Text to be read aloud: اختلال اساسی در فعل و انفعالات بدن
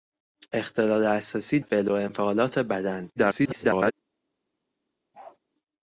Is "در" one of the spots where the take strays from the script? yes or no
yes